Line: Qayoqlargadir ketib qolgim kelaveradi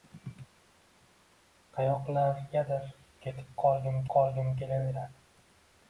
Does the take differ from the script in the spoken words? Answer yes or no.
yes